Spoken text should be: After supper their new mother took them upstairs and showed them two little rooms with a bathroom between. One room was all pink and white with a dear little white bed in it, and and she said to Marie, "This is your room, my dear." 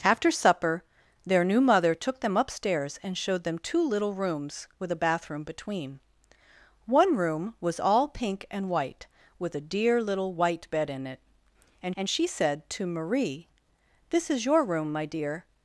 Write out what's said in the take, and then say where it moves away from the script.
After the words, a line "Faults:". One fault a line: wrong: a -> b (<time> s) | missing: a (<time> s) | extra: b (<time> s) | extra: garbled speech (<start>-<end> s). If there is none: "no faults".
After supper their new mother took them upstairs and showed them two little rooms with a bathroom between. One room was all pink and white with a dear little white bed in it, and and she said to Marie, "This is your room, my dear."
Faults:
no faults